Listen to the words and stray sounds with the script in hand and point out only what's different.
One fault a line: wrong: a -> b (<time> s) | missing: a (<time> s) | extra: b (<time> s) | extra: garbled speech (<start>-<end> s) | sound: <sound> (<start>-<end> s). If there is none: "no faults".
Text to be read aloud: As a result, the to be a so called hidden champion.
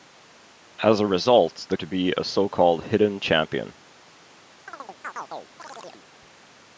sound: chirp (4.7-6.1 s)